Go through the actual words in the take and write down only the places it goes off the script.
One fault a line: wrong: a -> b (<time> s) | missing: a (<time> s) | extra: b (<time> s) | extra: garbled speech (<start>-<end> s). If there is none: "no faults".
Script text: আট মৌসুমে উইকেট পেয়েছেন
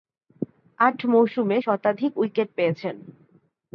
extra: শতাধিক (1.6 s)